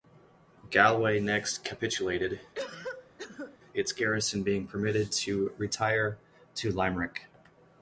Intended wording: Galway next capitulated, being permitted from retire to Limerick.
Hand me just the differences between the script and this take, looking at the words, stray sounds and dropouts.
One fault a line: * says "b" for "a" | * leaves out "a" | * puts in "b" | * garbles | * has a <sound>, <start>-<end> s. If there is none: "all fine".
* has a cough, 2.5-3.6 s
* puts in "its garrison"
* says "to" for "from"